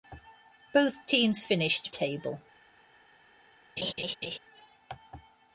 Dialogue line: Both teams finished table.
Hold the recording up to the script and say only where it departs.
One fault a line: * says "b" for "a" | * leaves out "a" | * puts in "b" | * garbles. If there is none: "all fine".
all fine